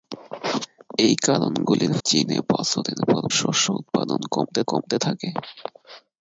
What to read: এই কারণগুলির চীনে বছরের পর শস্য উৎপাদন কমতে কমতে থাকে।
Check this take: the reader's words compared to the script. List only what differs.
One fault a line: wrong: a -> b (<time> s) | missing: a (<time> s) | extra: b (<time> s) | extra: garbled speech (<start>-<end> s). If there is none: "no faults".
no faults